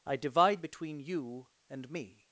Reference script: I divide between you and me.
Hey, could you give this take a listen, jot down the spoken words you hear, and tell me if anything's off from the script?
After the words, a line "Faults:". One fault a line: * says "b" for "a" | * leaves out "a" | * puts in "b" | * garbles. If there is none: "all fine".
I divide between you and me.
Faults:
all fine